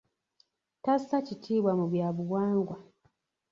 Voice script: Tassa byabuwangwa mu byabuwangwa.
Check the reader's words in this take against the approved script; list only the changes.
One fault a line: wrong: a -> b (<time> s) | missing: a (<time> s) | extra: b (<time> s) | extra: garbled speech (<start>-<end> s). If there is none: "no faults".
wrong: byabuwangwa -> kitiibwa (1.3 s)